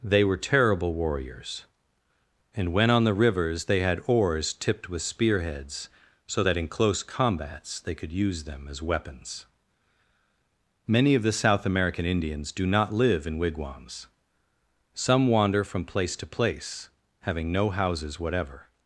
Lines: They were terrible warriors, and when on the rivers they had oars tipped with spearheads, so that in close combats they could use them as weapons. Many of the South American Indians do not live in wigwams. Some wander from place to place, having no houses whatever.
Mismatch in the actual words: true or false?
false